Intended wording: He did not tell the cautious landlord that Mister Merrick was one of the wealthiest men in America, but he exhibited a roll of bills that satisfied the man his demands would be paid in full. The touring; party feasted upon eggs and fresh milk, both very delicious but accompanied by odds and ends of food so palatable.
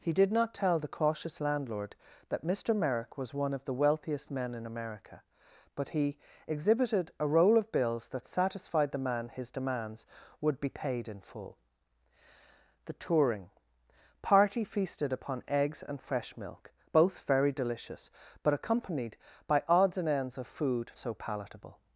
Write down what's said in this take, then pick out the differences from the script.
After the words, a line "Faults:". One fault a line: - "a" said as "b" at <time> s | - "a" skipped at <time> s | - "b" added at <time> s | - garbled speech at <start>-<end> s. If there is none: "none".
He did not tell the cautious landlord that Mister Merrick was one of the wealthiest men in America, but he exhibited a roll of bills that satisfied the man his demands would be paid in full. The touring; party feasted upon eggs and fresh milk, both very delicious but accompanied by odds and ends of food so palatable.
Faults:
none